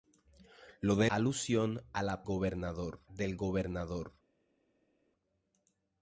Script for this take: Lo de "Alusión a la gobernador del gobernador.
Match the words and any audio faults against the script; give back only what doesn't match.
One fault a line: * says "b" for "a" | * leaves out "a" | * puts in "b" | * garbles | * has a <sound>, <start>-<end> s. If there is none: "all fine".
all fine